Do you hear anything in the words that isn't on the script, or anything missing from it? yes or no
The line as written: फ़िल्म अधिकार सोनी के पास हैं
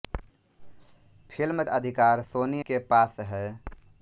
no